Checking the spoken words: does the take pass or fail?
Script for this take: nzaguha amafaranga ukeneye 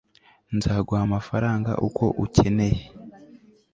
fail